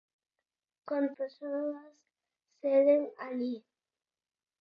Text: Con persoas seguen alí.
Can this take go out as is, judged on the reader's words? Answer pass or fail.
pass